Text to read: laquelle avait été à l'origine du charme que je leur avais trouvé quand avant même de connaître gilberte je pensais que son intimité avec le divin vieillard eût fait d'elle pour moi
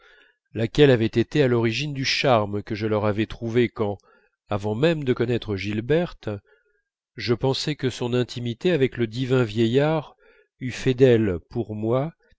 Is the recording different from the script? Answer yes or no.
no